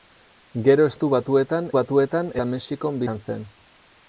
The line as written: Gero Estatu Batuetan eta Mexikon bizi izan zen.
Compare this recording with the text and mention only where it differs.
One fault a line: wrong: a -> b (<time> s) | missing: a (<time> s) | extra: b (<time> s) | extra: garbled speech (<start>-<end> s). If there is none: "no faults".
extra: Batuetan (1.8 s)
missing: bizi (3.0 s)